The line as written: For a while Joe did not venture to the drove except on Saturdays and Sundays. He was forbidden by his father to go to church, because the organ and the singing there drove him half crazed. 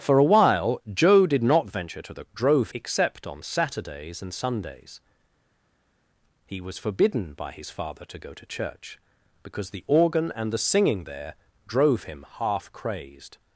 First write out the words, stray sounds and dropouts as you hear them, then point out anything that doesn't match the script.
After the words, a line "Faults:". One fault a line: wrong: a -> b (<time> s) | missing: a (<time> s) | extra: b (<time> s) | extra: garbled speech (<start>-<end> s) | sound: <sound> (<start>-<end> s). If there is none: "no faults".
For a while Joe did not venture to the drove except on Saturdays and Sundays. He was forbidden by his father to go to church, because the organ and the singing there drove him half crazed.
Faults:
no faults